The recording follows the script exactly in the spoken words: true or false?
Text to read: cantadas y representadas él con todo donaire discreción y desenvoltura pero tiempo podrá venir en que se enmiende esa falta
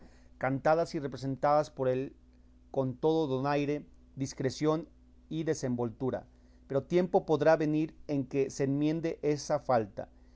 false